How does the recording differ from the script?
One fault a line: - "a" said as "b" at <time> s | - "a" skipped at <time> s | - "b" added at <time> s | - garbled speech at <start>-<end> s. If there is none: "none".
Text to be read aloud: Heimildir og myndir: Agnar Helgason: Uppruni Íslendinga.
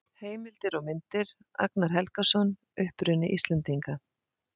none